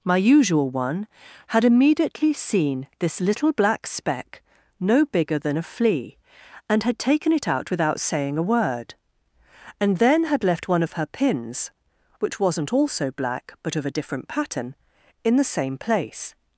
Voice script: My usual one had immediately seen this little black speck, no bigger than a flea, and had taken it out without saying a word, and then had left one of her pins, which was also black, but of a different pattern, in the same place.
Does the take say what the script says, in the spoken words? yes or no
no